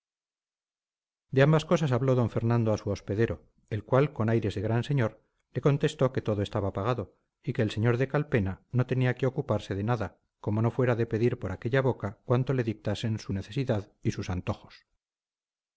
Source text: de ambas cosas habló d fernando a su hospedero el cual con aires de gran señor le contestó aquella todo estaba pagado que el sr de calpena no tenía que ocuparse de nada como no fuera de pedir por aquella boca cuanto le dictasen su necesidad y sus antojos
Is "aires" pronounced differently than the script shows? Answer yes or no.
no